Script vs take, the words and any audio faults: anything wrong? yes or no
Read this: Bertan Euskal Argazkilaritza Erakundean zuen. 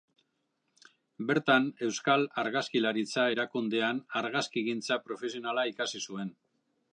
yes